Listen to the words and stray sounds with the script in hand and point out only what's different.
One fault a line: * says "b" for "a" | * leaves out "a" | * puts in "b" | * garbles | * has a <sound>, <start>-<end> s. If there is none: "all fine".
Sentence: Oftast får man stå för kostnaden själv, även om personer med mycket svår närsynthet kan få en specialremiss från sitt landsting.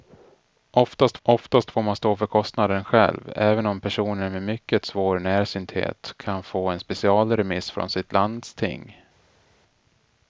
* puts in "oftast"